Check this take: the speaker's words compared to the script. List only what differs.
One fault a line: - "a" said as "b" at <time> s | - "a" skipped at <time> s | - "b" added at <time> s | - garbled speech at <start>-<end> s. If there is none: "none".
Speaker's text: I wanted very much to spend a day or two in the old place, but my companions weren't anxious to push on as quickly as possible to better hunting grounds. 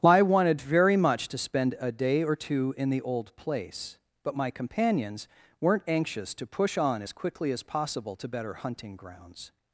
none